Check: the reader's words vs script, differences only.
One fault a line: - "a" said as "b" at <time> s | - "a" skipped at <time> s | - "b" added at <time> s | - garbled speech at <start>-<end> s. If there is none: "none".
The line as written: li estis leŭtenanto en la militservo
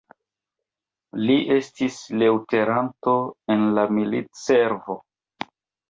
none